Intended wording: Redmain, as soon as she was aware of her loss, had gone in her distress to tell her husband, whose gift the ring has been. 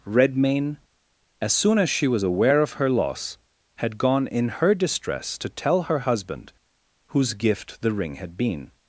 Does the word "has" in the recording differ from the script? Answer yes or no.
yes